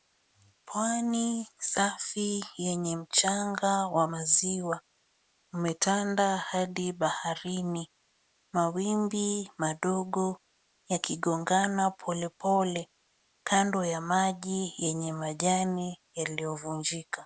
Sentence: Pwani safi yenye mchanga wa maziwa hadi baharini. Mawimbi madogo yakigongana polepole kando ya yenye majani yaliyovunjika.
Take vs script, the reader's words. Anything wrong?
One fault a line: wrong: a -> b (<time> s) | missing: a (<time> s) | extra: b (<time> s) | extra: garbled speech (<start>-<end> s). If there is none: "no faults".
extra: umetanda (5.5 s)
extra: maji (14.0 s)